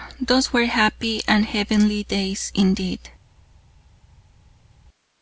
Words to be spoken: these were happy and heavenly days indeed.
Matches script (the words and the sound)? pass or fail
fail